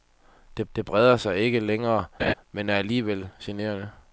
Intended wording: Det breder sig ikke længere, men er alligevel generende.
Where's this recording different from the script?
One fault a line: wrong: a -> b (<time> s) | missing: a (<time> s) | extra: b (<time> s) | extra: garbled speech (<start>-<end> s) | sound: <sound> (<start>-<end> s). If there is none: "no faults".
extra: det (0.8 s)
sound: laugh (2.2-2.3 s)